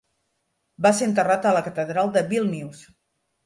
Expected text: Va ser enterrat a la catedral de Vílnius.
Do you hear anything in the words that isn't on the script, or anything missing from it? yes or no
no